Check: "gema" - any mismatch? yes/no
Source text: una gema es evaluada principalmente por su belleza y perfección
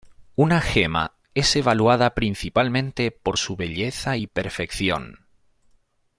no